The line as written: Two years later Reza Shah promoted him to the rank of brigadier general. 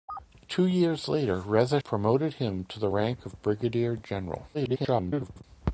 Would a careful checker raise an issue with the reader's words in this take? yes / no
yes